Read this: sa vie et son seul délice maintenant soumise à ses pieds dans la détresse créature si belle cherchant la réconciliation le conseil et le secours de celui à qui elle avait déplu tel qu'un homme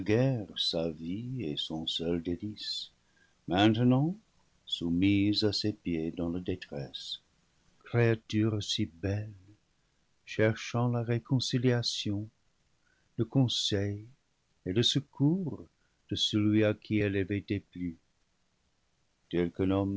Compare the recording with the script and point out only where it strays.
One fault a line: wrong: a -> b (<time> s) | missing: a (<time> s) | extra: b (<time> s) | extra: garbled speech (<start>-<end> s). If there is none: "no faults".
no faults